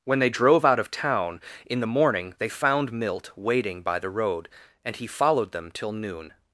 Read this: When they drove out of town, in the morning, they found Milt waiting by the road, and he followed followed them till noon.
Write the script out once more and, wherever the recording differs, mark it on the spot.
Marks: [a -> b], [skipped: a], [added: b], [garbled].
When they drove out of town, in the morning, they found Milt waiting by the road, and he followed [skipped: followed] them till noon.